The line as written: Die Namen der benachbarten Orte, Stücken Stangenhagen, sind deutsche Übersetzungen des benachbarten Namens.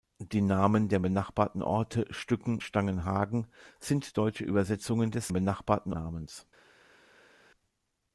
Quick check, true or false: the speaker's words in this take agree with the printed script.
true